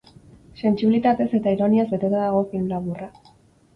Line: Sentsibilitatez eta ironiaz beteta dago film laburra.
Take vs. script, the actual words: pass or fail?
pass